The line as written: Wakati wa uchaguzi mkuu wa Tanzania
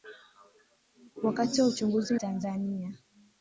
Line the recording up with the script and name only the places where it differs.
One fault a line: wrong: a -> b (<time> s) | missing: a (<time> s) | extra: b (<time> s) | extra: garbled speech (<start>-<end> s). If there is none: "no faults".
missing: mkuu wa (2.2 s)